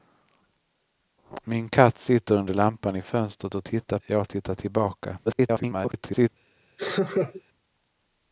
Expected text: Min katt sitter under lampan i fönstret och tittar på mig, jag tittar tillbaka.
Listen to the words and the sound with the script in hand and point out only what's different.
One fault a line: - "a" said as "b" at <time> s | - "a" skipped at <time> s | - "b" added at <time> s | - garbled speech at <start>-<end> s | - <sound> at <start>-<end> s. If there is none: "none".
- "på mig" skipped at 4.0 s
- garbled speech at 5.3-6.3 s
- laugh at 6.8-7.4 s